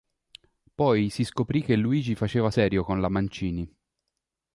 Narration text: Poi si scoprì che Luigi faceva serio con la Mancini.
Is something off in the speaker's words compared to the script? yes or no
no